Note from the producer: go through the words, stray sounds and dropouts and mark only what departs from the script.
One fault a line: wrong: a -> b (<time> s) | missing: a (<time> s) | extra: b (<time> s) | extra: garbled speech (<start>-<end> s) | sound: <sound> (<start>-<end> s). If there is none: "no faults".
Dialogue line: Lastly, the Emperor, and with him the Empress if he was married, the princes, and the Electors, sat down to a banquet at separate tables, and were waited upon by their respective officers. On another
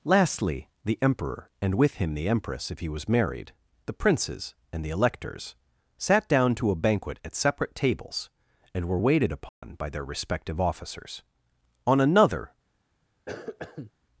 sound: dropout (9.5-9.6 s)
sound: cough (13.3-13.9 s)